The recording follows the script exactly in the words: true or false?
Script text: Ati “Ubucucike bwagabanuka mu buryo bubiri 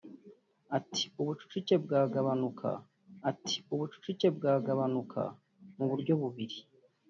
false